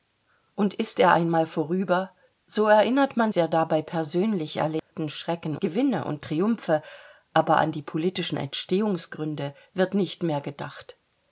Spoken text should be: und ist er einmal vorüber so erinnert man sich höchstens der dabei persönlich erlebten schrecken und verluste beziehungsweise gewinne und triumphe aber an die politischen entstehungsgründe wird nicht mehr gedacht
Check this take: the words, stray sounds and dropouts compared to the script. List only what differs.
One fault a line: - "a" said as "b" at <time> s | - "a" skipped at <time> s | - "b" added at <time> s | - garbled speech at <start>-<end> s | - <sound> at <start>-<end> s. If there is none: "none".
- "sich höchstens" skipped at 3.3 s
- dropout at 4.8-4.9 s
- "und verluste beziehungsweise" skipped at 5.6 s